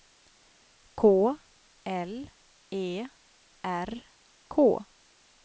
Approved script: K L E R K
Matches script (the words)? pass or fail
pass